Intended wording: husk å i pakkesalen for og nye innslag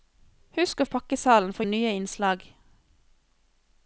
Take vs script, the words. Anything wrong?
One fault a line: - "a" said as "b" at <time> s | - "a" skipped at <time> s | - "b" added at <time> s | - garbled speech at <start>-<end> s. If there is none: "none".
none